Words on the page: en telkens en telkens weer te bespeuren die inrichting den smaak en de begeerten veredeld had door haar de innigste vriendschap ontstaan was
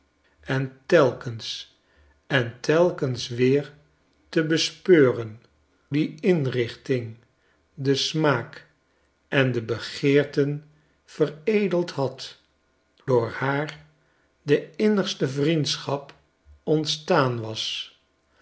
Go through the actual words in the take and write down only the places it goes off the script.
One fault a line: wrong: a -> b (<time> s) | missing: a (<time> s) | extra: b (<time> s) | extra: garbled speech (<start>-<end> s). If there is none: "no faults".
no faults